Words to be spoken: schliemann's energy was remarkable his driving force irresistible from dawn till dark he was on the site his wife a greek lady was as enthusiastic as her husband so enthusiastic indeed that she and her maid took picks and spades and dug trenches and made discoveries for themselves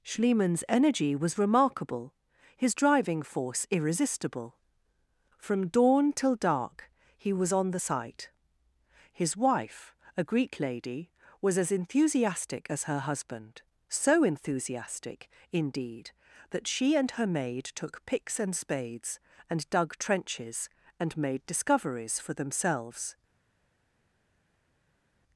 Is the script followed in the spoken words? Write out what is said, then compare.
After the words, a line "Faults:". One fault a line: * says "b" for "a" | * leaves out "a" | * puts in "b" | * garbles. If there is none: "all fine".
schliemann's energy was remarkable his driving force irresistible from dawn till dark he was on the site his wife a greek lady was as enthusiastic as her husband so enthusiastic indeed that she and her maid took picks and spades and dug trenches and made discoveries for themselves
Faults:
all fine